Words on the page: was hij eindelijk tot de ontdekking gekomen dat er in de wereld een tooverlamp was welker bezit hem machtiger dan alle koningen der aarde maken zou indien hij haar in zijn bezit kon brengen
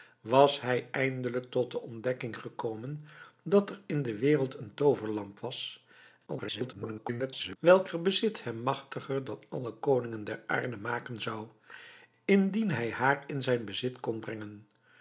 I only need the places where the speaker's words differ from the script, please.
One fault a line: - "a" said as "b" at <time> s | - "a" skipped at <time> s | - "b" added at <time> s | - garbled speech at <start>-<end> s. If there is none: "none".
- garbled speech at 6.3-7.6 s